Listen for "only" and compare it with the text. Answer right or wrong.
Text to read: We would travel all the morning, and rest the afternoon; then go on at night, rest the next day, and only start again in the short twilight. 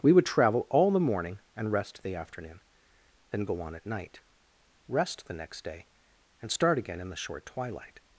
wrong